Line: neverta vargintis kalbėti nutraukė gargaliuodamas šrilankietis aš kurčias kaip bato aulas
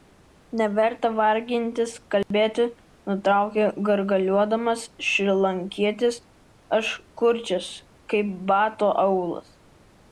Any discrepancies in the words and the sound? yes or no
yes